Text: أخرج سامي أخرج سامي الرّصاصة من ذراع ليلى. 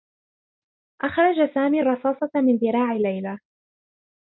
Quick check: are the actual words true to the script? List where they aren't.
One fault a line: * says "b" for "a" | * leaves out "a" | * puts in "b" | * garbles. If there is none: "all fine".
* leaves out "أخرج سامي"